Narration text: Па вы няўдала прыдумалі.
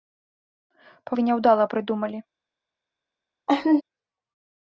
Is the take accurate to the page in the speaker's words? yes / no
yes